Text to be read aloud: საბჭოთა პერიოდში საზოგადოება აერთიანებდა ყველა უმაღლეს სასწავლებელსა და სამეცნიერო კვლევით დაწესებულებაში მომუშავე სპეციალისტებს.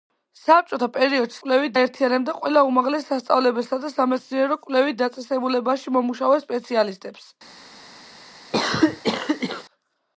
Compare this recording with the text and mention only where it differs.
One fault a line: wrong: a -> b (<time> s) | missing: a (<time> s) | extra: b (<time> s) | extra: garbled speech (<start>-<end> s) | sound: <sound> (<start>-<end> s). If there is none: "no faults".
wrong: საზოგადოება -> კვლევით (1.4 s)
sound: cough (8.5-9.6 s)